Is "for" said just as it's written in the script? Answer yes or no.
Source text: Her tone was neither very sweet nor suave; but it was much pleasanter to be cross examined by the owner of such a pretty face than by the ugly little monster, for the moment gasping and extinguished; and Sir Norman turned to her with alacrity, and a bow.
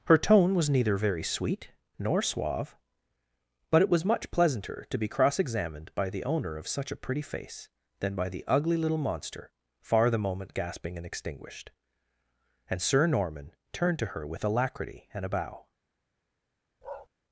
no